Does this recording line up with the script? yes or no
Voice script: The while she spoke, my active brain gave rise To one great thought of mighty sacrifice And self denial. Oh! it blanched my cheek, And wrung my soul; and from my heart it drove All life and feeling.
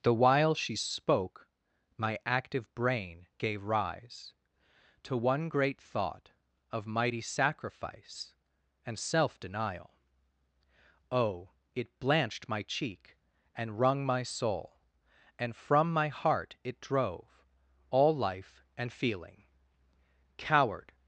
no